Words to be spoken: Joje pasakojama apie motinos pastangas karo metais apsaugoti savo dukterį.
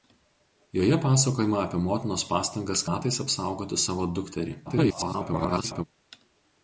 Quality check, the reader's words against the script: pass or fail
fail